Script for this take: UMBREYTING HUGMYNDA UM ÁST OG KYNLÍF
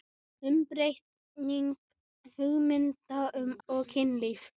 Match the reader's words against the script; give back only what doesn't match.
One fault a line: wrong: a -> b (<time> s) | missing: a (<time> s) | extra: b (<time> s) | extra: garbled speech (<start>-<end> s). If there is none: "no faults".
missing: ÁST (3.5 s)